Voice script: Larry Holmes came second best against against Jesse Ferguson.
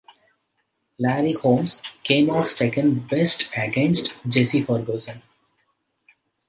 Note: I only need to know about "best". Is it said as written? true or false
true